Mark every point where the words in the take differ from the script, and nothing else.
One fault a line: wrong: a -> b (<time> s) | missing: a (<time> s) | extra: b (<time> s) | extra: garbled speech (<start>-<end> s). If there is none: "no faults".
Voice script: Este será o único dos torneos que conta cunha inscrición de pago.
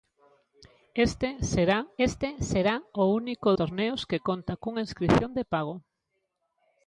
extra: este será (2.1 s)
missing: dos (3.5 s)